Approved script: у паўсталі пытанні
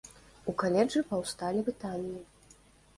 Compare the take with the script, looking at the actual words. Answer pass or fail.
fail